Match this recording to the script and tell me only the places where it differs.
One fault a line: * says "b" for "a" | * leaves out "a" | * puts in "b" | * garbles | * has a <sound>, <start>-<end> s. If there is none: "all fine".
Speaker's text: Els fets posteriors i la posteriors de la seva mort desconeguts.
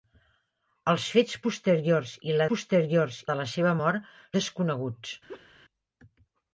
* has a laugh, 5.3-5.5 s